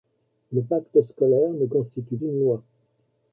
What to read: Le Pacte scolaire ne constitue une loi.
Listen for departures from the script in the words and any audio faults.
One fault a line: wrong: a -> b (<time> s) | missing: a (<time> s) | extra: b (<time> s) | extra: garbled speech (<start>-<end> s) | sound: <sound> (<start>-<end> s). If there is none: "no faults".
no faults